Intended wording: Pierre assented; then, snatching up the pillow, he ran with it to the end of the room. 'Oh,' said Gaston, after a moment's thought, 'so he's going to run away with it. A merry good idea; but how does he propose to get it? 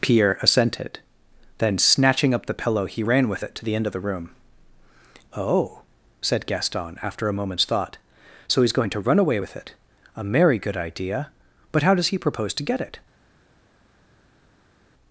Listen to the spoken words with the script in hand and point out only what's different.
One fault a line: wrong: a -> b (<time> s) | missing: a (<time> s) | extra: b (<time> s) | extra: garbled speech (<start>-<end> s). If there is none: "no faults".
no faults